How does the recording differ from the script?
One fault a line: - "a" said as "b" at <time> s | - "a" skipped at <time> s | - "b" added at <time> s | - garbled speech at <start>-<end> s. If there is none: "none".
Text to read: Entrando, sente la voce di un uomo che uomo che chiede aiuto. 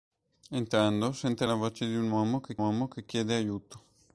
none